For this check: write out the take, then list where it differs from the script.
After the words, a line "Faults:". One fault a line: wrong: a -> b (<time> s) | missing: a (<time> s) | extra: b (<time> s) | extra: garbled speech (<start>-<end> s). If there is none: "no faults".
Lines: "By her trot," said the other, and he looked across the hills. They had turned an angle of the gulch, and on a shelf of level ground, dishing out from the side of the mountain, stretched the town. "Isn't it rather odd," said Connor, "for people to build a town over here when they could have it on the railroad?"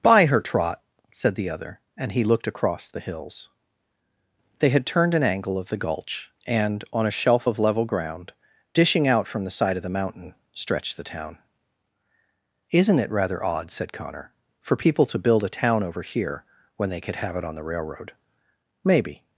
"By her trot," said the other, and he looked across the hills. They had turned an angle of the gulch, and on a shelf of level ground, dishing out from the side of the mountain, stretched the town. "Isn't it rather odd," said Connor, "for people to build a town over here when they could have it on the railroad?" "Maybe
Faults:
extra: Maybe (18.8 s)